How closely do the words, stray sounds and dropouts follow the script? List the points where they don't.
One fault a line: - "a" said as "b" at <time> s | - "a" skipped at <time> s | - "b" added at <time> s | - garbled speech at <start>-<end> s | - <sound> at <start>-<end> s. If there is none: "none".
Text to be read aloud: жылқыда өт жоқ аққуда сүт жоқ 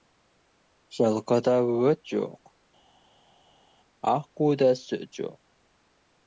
none